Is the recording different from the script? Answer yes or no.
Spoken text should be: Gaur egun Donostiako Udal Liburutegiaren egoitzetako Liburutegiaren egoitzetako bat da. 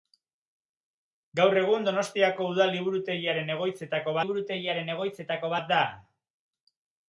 no